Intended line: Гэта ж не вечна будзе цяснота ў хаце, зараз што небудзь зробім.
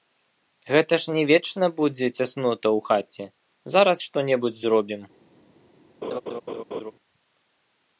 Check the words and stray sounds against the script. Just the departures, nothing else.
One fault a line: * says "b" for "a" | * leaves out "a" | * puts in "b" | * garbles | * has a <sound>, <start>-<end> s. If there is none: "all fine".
* has a laugh, 6.0-6.9 s